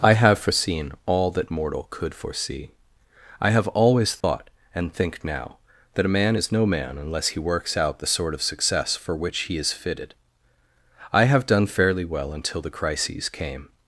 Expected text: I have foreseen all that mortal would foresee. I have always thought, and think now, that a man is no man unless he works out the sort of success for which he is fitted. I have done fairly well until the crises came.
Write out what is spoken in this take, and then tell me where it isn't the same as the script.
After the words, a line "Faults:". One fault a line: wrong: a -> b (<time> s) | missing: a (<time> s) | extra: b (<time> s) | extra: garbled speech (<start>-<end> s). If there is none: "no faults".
I have foreseen all that mortal could foresee. I have always thought, and think now, that a man is no man unless he works out the sort of success for which he is fitted. I have done fairly well until the crises came.
Faults:
wrong: would -> could (1.9 s)